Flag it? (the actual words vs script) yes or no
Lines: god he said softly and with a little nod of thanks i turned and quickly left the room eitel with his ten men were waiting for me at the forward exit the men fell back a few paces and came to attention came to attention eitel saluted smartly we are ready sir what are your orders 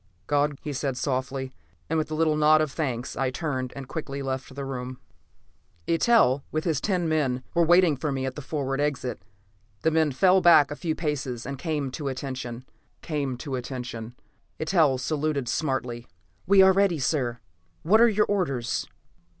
no